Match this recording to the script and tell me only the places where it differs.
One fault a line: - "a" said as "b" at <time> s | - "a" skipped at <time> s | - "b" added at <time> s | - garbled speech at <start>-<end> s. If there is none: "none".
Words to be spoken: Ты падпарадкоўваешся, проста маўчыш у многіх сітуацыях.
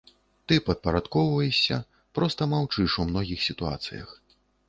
none